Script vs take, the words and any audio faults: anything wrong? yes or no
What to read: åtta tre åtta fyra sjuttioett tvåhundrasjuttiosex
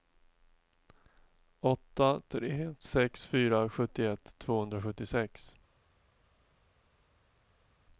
yes